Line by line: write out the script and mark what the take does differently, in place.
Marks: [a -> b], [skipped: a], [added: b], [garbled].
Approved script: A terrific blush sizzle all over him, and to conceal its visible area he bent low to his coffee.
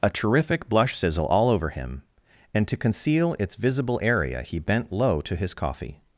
A terrific blush sizzle all over him, and to conceal its visible area he bent low to his coffee.